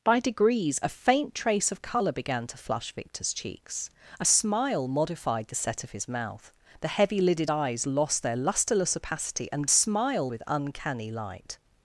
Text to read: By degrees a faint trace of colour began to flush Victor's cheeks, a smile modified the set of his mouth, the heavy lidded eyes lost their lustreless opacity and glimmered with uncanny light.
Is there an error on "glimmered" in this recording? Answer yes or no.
yes